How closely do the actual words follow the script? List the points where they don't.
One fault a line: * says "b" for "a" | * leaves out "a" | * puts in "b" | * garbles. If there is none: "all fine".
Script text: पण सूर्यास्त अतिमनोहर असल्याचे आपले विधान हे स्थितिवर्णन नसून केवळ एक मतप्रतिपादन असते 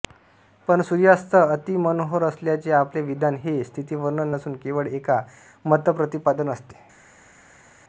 all fine